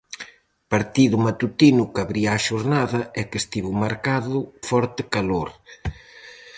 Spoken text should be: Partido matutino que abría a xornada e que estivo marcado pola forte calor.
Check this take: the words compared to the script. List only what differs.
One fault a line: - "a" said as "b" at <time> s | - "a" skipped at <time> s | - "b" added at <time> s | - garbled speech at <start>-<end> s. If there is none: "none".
- "pola" skipped at 4.4 s